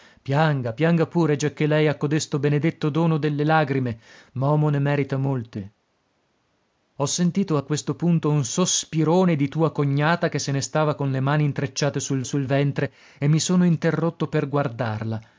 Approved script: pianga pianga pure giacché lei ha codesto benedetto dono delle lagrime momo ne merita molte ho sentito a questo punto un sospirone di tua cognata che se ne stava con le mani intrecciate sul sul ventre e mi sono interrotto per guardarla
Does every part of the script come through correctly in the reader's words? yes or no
yes